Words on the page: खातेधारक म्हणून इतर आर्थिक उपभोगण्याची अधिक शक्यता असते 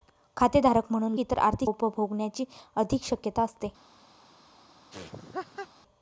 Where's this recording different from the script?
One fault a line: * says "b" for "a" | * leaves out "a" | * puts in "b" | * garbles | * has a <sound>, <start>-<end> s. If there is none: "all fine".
* has a laugh, 4.9-5.7 s